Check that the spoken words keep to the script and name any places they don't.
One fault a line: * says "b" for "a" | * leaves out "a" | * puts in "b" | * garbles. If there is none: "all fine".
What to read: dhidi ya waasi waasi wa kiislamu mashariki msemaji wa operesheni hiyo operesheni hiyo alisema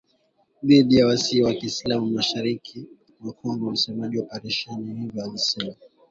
* leaves out "waasi"
* puts in "mwa Kongo"
* leaves out "operesheni hiyo"